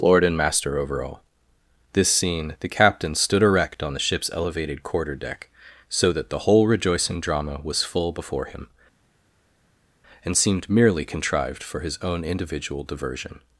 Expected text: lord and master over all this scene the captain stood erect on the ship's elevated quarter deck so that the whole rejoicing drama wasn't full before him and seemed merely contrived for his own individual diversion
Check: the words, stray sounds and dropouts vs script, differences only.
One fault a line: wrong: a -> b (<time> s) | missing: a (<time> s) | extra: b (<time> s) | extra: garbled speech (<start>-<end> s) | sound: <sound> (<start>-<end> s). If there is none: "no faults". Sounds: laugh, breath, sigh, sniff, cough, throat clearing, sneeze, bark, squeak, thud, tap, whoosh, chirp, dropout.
wrong: wasn't -> was (7.6 s)